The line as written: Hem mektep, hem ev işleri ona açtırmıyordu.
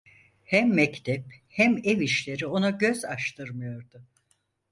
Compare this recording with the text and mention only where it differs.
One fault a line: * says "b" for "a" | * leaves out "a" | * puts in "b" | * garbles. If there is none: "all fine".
* puts in "göz"